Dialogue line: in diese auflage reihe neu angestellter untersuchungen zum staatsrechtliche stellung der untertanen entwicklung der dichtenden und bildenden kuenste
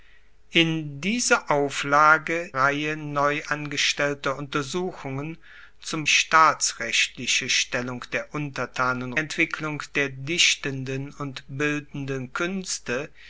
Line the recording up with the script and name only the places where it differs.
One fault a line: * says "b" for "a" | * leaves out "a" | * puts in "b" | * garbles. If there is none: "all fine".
all fine